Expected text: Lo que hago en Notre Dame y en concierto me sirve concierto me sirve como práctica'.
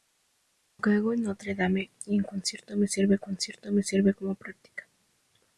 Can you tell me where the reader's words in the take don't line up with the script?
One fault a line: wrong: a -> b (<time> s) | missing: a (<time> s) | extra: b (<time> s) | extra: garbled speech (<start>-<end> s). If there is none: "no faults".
no faults